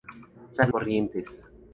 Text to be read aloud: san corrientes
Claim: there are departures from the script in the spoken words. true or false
false